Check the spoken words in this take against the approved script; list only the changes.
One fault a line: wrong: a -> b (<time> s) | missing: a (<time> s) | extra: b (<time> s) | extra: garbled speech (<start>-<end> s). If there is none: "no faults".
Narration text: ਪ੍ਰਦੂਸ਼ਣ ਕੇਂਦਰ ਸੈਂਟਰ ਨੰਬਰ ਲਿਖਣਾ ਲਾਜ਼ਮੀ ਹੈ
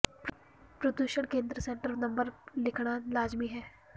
no faults